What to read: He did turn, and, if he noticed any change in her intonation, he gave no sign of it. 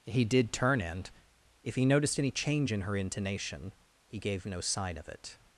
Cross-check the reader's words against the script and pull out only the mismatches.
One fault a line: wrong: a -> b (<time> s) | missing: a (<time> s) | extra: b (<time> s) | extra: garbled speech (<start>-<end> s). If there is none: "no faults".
no faults